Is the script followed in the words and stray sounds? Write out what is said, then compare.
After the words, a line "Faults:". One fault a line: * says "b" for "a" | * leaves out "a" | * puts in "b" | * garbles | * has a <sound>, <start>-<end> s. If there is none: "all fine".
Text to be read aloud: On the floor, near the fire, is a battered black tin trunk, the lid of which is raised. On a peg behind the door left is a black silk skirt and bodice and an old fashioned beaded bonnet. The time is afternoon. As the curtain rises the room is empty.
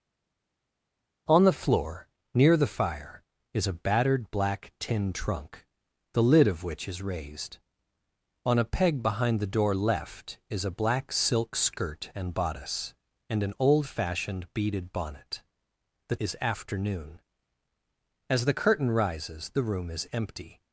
On the floor, near the fire, is a battered black tin trunk, the lid of which is raised. On a peg behind the door left is a black silk skirt and bodice and an old fashioned beaded bonnet. The is afternoon. As the curtain rises the room is empty.
Faults:
* leaves out "time"